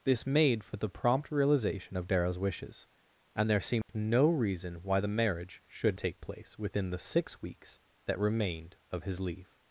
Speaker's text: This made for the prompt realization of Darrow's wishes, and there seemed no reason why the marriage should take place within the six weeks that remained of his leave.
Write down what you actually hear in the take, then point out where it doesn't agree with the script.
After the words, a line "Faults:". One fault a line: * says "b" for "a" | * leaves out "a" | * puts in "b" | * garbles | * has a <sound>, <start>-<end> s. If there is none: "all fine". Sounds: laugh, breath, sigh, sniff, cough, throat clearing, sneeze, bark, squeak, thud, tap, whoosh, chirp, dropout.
This made for the prompt realization of Darrow's wishes, and there seemed no reason why the marriage should take place within the six weeks that remained of his leave.
Faults:
* has a dropout, 3.8-3.9 s